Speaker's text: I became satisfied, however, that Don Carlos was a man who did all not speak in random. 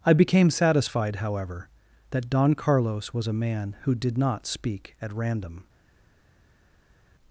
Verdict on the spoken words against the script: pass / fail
fail